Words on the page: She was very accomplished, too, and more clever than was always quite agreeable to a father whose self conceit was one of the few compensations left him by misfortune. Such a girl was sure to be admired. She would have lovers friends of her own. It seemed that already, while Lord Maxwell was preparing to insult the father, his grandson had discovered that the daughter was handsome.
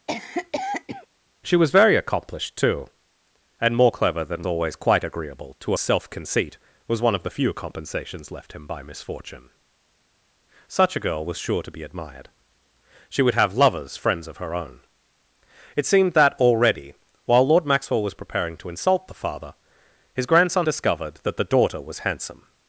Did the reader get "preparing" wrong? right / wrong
right